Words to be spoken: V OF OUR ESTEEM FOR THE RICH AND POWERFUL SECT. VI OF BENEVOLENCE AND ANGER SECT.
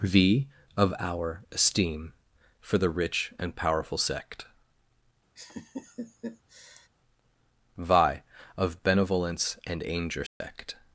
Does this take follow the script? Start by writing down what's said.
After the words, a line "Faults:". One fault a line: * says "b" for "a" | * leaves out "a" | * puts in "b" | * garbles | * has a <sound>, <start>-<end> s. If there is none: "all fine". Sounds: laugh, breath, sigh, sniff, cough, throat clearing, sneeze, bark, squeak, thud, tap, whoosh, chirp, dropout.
V OF OUR ESTEEM FOR THE RICH AND POWERFUL SECT. VI OF BENEVOLENCE AND ANGER SECT.
Faults:
* has a laugh, 5.4-6.9 s
* has a dropout, 10.3-10.4 s